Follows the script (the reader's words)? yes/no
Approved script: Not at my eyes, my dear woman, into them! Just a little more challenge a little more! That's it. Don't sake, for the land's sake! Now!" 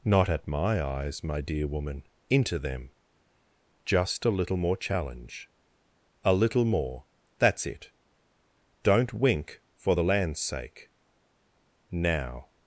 no